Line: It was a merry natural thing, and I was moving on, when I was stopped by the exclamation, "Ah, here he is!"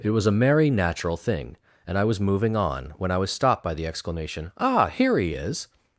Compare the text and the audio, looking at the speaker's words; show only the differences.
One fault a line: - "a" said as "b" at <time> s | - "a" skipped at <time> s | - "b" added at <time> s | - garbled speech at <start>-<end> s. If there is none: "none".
none